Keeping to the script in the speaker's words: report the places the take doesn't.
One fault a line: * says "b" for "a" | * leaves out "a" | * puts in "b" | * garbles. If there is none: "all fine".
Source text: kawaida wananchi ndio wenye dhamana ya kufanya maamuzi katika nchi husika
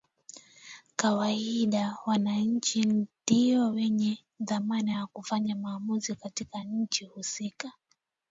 all fine